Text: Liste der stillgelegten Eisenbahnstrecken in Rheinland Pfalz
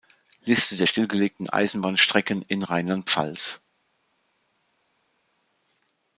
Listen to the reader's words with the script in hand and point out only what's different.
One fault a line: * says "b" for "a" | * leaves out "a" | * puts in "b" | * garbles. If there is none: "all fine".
all fine